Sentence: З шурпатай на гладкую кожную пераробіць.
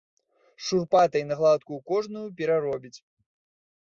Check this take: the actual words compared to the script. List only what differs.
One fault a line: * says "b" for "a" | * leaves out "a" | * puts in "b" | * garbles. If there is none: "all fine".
all fine